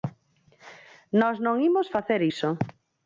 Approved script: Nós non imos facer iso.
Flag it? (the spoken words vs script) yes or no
no